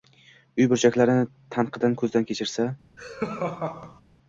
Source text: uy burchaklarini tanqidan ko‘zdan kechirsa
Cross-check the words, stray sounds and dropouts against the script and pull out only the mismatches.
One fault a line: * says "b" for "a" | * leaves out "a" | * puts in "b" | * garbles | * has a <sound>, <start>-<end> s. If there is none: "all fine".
* has a laugh, 3.0-4.0 s